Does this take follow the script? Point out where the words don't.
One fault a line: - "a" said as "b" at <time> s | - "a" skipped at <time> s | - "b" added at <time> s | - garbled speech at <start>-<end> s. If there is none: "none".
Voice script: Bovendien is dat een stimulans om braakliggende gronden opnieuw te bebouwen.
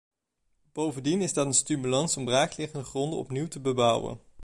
none